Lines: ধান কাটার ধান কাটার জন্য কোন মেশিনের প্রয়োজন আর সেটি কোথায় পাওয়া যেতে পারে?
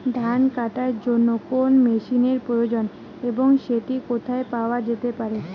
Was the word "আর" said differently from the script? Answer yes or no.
yes